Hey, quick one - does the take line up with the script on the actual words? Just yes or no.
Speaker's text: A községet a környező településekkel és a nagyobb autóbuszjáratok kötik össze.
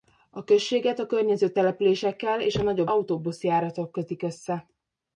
yes